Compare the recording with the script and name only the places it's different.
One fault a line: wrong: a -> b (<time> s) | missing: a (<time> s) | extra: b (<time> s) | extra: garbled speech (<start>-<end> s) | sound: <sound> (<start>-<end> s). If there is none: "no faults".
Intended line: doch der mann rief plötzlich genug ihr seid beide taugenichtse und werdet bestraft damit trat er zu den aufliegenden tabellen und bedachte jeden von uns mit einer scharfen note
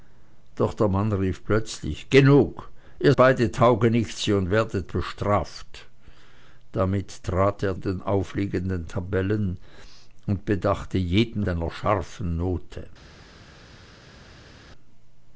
missing: seid (3.1 s)
missing: zu (7.8 s)
missing: von uns mit (11.5 s)